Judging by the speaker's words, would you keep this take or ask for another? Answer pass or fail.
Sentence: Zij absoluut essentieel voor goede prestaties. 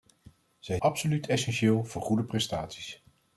pass